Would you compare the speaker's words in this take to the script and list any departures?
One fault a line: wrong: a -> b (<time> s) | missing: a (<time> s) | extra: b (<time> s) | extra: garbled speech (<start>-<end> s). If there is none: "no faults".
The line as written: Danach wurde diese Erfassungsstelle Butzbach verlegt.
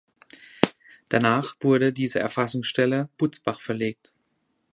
no faults